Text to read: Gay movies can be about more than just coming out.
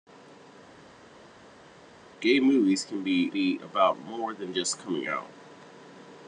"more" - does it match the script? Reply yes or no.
yes